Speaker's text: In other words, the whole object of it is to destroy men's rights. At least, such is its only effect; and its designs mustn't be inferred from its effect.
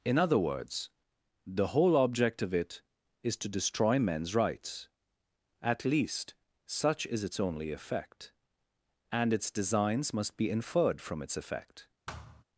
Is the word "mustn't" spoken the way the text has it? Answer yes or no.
no